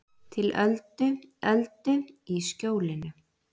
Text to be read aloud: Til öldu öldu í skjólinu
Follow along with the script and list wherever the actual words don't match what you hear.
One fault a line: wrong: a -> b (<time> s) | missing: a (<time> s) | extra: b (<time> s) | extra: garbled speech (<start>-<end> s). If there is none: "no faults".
no faults